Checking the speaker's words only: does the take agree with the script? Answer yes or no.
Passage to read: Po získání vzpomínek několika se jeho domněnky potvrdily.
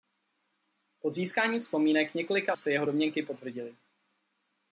yes